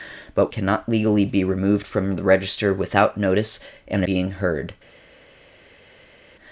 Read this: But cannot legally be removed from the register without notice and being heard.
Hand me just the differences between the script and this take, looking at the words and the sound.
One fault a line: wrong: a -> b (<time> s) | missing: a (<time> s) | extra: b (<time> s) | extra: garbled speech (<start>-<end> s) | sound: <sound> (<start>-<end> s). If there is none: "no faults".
no faults